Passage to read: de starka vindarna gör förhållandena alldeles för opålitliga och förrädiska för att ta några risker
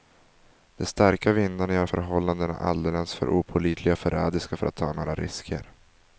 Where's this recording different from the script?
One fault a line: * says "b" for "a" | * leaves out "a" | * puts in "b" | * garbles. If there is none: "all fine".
all fine